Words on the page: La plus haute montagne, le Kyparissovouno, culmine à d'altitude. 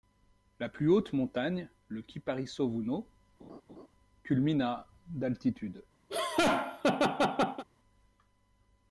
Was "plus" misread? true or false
false